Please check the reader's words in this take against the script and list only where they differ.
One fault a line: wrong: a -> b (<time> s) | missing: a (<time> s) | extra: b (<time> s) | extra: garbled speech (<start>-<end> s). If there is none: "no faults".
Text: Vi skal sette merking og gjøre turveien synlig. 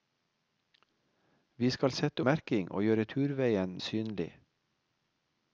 no faults